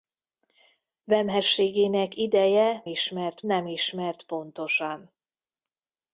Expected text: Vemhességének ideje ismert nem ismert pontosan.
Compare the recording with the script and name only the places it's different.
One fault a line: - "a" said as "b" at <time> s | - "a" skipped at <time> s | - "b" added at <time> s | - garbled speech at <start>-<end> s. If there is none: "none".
none